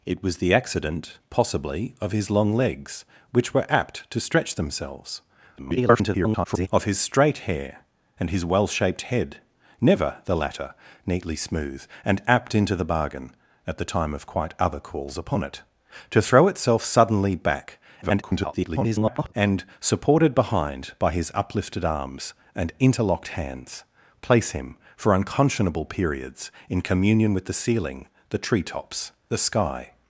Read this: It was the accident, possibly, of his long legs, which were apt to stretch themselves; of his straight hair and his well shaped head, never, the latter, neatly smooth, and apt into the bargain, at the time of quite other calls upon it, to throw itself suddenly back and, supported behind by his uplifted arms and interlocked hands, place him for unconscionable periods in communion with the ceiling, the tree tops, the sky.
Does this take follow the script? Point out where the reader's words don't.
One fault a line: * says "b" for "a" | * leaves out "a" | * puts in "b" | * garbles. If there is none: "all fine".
* garbles
* garbles